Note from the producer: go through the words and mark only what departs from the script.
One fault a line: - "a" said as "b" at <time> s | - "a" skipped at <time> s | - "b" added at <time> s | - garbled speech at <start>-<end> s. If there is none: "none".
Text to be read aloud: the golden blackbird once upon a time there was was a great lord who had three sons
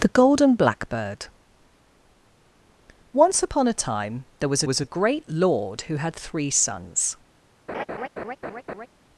none